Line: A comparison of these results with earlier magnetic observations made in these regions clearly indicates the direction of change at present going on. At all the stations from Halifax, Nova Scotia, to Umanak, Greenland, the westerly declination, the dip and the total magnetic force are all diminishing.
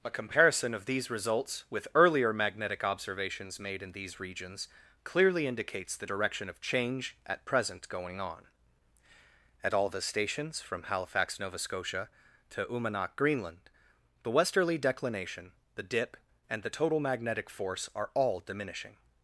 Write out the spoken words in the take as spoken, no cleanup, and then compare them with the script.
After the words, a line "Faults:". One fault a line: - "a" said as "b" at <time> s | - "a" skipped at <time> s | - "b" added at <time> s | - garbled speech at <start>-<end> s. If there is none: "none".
A comparison of these results with earlier magnetic observations made in these regions clearly indicates the direction of change at present going on. At all the stations from Halifax, Nova Scotia, to Umanak, Greenland, the westerly declination, the dip and the total magnetic force are all diminishing.
Faults:
none